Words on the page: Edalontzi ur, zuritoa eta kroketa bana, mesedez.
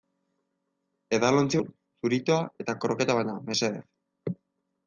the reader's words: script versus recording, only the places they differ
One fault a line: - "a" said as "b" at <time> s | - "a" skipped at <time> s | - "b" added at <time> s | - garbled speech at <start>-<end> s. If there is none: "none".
none